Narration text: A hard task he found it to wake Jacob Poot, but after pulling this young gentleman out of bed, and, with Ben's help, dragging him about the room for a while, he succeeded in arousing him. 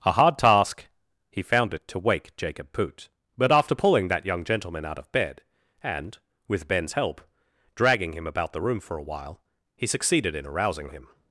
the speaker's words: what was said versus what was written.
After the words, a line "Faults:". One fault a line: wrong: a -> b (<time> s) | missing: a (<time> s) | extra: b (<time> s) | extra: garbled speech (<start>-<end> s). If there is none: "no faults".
A hard task he found it to wake Jacob Poot, but after pulling that young gentleman out of bed, and, with Ben's help, dragging him about the room for a while, he succeeded in arousing him.
Faults:
wrong: this -> that (4.1 s)